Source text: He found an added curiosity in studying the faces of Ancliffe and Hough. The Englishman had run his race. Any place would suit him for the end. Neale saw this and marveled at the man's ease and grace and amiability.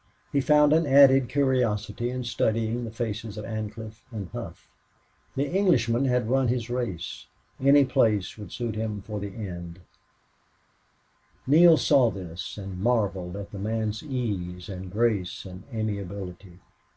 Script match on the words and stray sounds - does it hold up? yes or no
yes